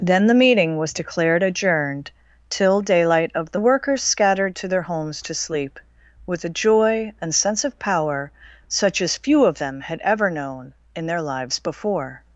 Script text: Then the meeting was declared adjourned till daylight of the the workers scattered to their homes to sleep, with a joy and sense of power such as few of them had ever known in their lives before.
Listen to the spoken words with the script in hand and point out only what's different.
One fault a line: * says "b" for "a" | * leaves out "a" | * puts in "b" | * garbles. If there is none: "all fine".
all fine